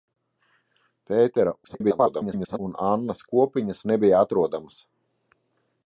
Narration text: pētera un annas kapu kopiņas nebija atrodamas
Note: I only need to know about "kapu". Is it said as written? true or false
false